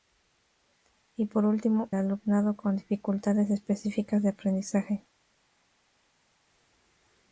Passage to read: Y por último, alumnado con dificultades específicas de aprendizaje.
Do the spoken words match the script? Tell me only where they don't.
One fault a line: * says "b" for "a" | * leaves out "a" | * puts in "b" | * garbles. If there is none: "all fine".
all fine